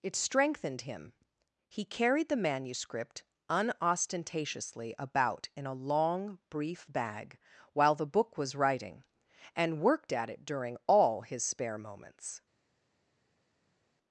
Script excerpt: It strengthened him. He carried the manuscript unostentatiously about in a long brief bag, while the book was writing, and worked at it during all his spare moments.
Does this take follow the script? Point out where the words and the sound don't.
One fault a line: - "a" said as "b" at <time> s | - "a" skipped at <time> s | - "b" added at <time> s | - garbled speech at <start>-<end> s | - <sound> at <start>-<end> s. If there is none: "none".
none